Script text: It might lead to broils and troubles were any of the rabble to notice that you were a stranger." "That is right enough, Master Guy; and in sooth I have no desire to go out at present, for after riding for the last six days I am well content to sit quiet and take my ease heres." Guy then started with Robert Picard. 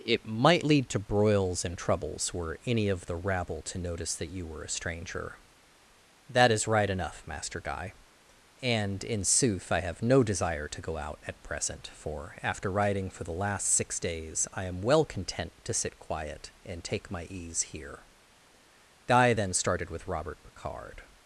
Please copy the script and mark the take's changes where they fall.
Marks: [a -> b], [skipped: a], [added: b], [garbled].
It might lead to broils and troubles were any of the rabble to notice that you were a stranger." "That is right enough, Master Guy; and in sooth I have no desire to go out at present, for after riding for the last six days I am well content to sit quiet and take my ease [heres." -> here] Guy then started with Robert Picard.